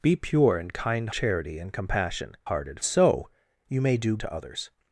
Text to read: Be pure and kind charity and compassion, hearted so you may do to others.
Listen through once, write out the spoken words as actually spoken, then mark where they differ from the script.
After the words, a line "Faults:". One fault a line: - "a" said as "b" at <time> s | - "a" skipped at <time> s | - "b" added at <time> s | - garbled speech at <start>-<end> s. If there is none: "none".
Be pure and kind charity and compassion, hearted so you may do to others.
Faults:
none